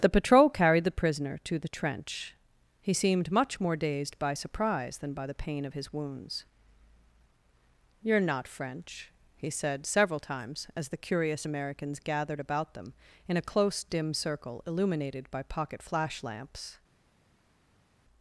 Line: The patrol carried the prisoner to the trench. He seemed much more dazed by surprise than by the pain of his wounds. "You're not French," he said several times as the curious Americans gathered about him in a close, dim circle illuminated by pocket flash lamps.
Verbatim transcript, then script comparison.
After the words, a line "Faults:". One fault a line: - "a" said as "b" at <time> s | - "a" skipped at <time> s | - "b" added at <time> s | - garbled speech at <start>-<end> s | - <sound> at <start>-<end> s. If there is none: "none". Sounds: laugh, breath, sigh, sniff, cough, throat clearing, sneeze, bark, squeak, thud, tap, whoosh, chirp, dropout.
The patrol carried the prisoner to the trench. He seemed much more dazed by surprise than by the pain of his wounds. "You're not French," he said several times as the curious Americans gathered about them in a close, dim circle illuminated by pocket flash lamps.
Faults:
- "him" said as "them" at 12.7 s